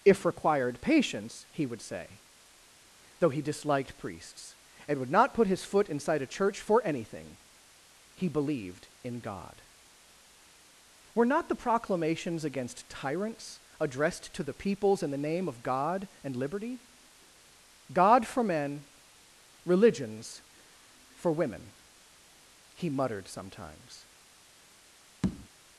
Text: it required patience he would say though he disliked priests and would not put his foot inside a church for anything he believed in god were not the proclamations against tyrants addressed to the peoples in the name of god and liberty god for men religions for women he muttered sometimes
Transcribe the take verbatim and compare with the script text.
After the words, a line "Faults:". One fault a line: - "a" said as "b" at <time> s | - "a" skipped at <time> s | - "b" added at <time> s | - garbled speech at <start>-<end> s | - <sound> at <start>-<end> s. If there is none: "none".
if required patience he would say though he disliked priests and would not put his foot inside a church for anything he believed in god were not the proclamations against tyrants addressed to the peoples in the name of god and liberty god for men religions for women he muttered sometimes
Faults:
- "it" said as "if" at 0.0 s
- tap at 25.2-25.5 s